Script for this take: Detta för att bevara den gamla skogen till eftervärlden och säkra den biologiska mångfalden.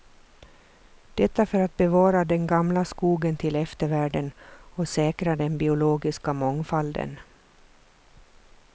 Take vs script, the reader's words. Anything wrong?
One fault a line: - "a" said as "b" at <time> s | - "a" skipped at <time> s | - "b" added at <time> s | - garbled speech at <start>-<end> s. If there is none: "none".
none